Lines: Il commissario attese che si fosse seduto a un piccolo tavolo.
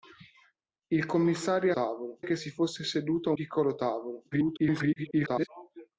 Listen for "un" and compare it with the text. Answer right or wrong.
wrong